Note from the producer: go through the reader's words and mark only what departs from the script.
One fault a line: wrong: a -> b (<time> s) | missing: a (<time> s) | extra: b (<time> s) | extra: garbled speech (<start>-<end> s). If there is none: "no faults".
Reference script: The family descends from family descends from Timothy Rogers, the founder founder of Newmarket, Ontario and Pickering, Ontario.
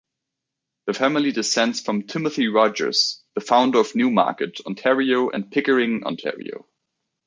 missing: family descends from (2.1 s)
missing: founder (3.8 s)